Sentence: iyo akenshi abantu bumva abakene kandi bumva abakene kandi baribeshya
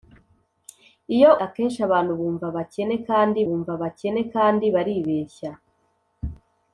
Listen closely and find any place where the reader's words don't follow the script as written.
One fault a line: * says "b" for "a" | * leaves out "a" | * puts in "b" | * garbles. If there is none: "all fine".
all fine